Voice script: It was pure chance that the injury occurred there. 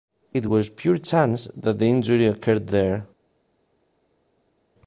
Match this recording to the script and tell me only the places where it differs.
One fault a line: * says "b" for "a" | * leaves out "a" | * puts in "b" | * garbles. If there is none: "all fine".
all fine